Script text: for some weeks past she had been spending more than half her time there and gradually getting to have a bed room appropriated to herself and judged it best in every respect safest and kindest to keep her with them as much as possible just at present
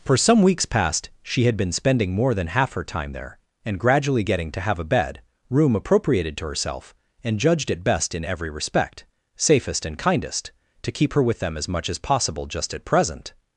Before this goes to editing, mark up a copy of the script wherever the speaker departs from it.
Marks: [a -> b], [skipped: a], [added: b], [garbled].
for some weeks past she had been spending more than half her time there and gradually getting to have a bed room appropriated to herself and judged it best in every respect safest and kindest to keep her with them as much as possible just at present